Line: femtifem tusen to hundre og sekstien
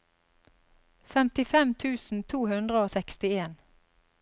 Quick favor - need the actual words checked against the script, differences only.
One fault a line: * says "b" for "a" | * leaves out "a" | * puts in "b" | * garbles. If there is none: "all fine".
all fine